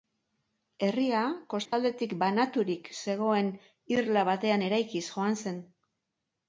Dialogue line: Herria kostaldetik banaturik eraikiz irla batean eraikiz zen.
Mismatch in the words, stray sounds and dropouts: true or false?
true